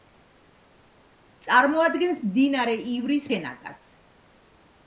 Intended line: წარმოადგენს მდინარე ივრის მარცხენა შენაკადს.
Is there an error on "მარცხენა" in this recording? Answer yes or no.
yes